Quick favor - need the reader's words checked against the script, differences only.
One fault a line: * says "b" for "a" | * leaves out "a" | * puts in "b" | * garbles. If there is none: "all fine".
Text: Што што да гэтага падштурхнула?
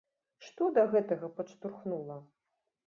* leaves out "што"